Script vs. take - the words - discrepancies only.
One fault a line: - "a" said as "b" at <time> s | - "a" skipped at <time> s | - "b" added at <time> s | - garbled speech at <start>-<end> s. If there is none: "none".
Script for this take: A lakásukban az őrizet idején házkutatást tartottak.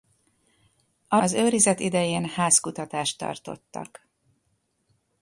- "lakásukban" skipped at 1.2 s